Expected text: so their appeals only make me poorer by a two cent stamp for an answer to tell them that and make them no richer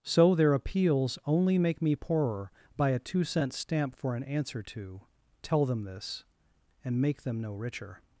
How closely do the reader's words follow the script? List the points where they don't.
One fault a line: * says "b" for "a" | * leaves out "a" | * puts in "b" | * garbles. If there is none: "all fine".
* says "this" for "that"